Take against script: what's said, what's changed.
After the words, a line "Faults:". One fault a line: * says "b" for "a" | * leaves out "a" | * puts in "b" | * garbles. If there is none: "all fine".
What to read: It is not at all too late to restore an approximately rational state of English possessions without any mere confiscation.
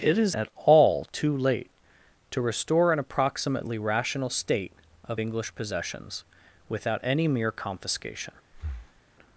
It is at all too late to restore an approximately rational state of English possessions without any mere confiscation.
Faults:
* leaves out "not"